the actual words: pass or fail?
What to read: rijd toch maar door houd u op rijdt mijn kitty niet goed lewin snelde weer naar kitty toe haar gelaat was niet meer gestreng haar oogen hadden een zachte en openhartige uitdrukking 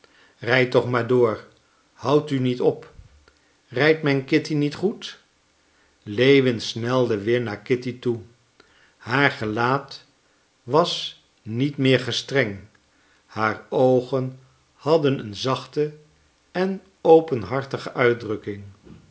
fail